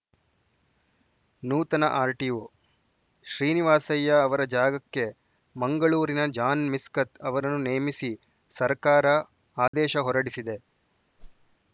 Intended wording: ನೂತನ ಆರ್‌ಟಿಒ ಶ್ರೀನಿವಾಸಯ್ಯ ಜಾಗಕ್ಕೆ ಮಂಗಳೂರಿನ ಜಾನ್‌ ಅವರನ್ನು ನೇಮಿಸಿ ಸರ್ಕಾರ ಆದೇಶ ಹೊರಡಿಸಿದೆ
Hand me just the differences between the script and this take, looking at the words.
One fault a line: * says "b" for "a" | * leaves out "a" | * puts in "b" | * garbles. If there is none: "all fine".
* puts in "ಅವರ"
* puts in "ಮಿಸ್ಕತ್"